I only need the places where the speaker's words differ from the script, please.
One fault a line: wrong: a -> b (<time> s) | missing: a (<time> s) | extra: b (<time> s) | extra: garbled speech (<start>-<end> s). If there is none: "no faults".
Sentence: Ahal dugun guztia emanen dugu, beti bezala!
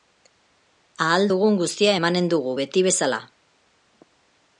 no faults